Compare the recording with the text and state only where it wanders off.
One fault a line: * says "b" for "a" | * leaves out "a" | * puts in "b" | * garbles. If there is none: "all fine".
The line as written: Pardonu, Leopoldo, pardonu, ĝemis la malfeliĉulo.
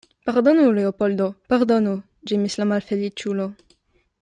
all fine